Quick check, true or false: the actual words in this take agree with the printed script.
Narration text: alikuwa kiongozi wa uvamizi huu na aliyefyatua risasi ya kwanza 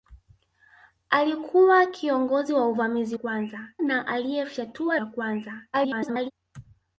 false